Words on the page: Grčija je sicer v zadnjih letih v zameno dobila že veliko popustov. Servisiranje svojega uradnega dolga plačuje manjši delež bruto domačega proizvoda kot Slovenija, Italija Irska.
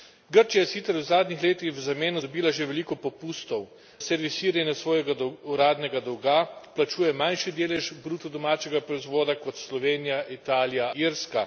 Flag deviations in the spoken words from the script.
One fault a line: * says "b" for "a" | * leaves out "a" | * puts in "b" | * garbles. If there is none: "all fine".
all fine